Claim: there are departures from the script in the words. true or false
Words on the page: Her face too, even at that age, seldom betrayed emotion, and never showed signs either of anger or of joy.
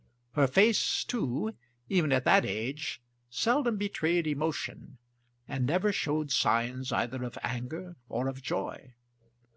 false